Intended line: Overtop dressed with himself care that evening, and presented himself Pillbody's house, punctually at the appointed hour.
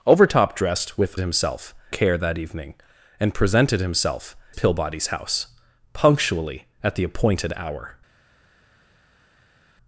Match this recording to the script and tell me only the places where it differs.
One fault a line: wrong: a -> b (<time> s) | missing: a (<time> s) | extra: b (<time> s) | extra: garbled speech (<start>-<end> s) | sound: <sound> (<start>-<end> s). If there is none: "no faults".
no faults